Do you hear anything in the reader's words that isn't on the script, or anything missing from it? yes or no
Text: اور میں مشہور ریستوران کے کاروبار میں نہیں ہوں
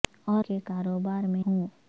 yes